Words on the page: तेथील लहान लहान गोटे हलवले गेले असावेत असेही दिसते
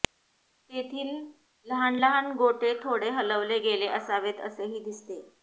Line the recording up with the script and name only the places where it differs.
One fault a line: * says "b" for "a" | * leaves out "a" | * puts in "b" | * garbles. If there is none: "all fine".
* puts in "थोडे"